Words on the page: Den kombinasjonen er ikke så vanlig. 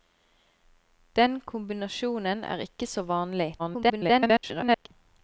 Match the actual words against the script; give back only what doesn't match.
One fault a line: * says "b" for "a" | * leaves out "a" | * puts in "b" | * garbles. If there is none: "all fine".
* garbles